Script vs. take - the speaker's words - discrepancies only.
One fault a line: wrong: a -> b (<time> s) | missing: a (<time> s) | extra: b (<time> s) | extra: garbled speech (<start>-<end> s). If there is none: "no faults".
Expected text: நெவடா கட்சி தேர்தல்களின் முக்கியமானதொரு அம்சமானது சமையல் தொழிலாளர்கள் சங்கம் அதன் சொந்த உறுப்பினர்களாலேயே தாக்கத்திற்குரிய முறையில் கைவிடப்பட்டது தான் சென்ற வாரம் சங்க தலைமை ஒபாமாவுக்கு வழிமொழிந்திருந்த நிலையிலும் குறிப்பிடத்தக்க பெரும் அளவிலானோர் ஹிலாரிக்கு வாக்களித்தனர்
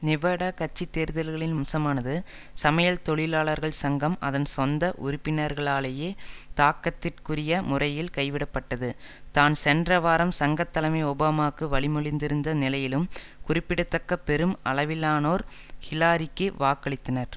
missing: முக்கியமானதொரு (1.6 s)